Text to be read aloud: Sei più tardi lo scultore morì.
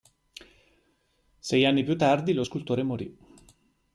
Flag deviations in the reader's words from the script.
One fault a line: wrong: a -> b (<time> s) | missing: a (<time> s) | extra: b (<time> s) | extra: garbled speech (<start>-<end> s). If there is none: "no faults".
extra: anni (1.6 s)